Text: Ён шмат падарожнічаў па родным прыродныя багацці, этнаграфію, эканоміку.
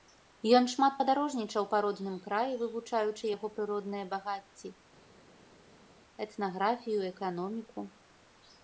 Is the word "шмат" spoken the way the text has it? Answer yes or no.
yes